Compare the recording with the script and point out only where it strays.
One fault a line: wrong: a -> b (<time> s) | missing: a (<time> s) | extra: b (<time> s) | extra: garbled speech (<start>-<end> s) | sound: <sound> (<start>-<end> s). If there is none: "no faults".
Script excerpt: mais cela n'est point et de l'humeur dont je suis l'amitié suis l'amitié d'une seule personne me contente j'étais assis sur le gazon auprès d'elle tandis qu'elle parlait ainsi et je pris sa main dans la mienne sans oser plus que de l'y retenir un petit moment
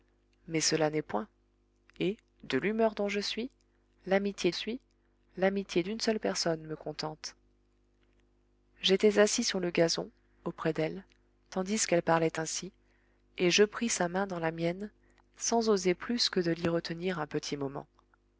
no faults